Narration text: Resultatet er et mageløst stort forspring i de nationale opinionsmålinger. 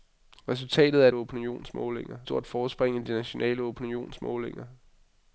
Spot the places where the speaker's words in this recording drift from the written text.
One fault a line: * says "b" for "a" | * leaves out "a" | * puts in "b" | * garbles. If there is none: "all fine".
* says "opinionsmålinger" for "mageløst"